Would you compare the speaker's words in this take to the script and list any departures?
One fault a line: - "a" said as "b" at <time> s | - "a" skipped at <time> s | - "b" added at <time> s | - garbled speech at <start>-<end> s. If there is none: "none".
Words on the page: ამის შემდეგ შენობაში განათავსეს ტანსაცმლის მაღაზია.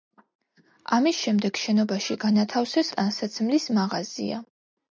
none